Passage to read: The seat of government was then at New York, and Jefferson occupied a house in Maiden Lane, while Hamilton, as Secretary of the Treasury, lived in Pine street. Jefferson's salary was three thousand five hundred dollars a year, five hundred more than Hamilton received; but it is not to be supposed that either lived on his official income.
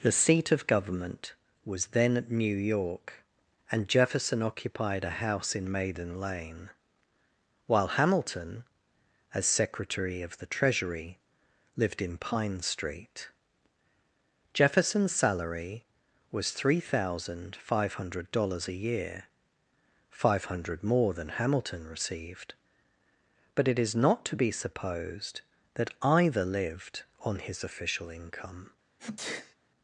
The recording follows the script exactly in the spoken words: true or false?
true